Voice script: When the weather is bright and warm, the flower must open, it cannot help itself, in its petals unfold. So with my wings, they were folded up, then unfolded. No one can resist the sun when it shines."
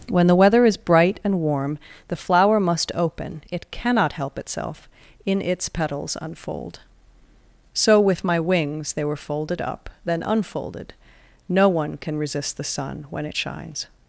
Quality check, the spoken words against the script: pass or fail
pass